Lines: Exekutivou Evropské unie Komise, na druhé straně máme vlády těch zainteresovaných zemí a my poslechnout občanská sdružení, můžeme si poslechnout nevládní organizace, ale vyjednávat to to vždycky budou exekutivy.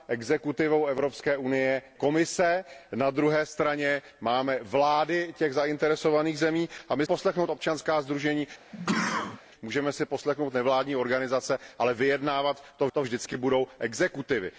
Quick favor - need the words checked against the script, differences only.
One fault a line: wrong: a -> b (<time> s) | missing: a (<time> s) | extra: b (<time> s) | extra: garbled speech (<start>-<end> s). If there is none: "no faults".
no faults